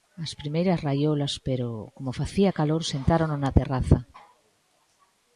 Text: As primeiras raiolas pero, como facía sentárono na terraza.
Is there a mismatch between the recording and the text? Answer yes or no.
yes